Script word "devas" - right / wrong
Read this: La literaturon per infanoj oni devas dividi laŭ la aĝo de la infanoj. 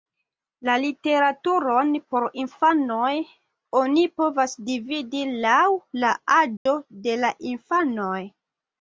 wrong